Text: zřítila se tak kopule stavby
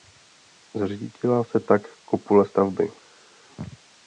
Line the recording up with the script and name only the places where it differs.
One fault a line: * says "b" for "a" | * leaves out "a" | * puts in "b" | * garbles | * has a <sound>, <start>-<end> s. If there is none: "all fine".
all fine